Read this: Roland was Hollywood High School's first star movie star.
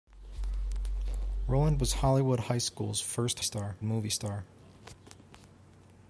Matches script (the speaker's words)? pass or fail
pass